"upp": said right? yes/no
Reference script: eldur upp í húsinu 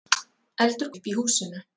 yes